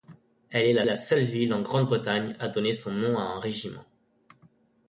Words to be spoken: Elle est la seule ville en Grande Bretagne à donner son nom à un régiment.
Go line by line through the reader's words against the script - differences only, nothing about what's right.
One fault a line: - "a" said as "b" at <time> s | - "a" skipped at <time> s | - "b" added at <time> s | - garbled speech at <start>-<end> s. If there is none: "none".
- "la" added at 0.8 s